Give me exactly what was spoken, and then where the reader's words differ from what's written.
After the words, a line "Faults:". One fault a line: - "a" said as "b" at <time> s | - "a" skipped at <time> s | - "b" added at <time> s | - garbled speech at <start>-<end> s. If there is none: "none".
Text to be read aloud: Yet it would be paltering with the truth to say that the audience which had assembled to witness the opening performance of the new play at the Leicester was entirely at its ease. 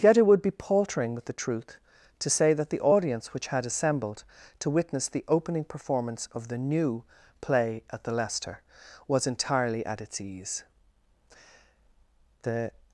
Yet it would be paltering with the truth to say that the audience which had assembled to witness the opening performance of the new play at the Leicester was entirely at its ease. The
Faults:
- "The" added at 12.4 s